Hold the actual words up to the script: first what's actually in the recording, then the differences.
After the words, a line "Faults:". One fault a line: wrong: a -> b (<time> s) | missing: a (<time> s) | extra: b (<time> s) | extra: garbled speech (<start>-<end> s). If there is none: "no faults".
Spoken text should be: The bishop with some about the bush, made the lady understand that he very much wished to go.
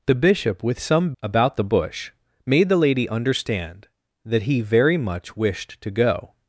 The bishop with some about the bush, made the lady understand that he very much wished to go.
Faults:
no faults